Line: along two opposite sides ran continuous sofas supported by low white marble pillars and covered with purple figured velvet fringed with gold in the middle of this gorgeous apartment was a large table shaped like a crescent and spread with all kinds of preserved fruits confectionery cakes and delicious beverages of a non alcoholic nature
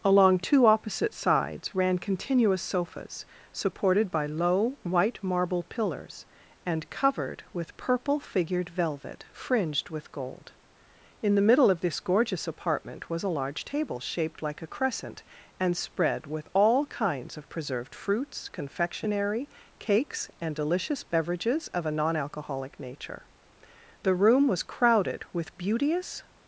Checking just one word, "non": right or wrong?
right